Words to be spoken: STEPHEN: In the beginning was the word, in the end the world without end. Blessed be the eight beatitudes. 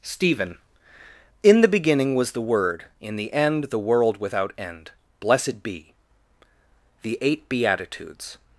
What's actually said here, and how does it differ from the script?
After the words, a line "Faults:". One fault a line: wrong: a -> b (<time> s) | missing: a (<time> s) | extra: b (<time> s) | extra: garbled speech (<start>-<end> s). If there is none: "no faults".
STEPHEN: In the beginning was the word, in the end the world without end. Blessed be the eight beatitudes.
Faults:
no faults